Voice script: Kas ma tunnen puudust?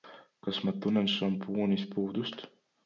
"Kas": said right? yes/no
yes